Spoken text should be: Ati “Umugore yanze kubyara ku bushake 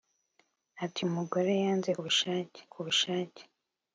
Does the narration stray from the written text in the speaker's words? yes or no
yes